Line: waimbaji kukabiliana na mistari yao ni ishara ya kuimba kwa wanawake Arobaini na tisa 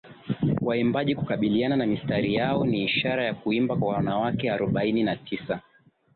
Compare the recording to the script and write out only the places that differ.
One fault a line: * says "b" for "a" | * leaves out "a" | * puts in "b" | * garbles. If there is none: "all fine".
all fine